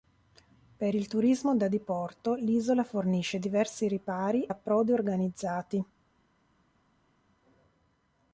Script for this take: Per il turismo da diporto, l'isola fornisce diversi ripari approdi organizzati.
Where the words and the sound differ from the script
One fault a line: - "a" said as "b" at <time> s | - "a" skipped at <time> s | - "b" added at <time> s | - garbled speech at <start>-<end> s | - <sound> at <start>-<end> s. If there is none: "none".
none